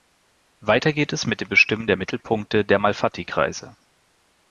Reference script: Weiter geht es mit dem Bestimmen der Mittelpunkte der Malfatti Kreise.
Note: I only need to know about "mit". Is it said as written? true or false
true